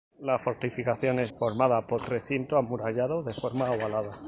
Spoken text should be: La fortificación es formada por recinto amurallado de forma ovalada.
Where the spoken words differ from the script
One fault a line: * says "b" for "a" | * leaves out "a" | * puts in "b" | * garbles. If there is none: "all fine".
all fine